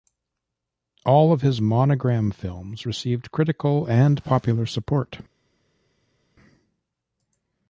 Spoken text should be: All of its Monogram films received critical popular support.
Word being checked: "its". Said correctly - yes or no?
no